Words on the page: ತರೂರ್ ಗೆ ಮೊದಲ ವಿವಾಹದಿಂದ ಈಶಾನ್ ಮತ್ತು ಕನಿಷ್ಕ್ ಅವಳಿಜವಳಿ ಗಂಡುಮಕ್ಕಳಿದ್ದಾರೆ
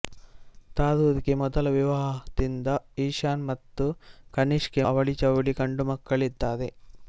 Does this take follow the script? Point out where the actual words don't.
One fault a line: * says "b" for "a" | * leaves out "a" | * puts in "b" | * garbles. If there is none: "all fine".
all fine